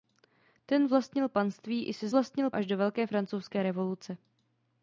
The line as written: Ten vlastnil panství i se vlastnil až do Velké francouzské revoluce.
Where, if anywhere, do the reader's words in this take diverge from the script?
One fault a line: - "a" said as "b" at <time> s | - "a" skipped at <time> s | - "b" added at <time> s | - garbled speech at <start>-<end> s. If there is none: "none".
none